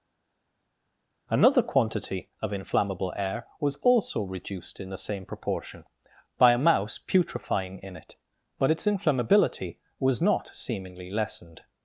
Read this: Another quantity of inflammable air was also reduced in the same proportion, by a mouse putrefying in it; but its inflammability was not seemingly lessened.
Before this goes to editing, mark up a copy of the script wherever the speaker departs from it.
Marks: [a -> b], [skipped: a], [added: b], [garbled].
Another quantity of inflammable air was also reduced in the same proportion, by a mouse putrefying in it; but its inflammability was not seemingly lessened.